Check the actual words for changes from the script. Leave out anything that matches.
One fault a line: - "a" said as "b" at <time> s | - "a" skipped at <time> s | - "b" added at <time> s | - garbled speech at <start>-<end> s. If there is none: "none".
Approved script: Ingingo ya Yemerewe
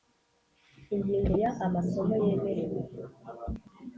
- "Amasomo" added at 1.7 s